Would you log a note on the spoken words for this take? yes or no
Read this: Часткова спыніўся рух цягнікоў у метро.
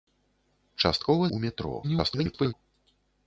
yes